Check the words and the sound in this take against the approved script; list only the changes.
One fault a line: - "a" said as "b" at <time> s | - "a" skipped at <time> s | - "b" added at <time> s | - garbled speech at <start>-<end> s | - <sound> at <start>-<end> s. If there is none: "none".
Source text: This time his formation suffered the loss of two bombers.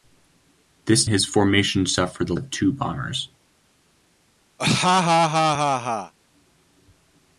- "time" skipped at 1.1 s
- "loss" skipped at 2.3 s
- laugh at 4.6-6.1 s